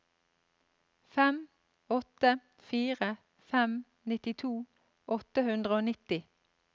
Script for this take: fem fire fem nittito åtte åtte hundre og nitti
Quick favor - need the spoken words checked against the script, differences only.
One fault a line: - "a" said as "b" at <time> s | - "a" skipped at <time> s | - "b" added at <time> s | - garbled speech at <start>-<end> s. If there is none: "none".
- "åtte" added at 2.0 s
- "åtte" skipped at 5.5 s